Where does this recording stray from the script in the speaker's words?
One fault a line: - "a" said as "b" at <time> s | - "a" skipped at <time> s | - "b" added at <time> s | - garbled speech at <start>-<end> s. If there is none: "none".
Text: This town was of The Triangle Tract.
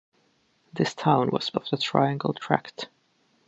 none